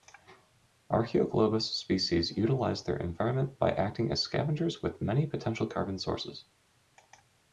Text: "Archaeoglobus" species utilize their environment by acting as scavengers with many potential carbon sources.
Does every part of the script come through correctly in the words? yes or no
yes